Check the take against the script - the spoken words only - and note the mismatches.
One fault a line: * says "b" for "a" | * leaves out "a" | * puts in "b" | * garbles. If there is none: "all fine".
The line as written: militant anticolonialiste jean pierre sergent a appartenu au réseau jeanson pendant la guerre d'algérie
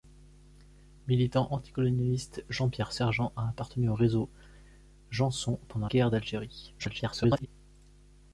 * leaves out "la"
* garbles